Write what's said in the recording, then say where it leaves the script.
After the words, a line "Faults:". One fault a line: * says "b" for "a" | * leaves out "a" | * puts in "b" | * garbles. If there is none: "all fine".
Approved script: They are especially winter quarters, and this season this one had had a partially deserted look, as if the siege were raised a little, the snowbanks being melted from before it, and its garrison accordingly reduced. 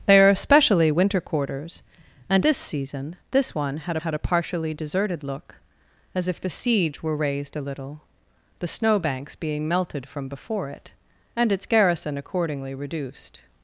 They are especially winter quarters, and this season this one had had a partially deserted look, as if the siege were raised a little, the snowbanks being melted from before it, and its garrison accordingly reduced.
Faults:
all fine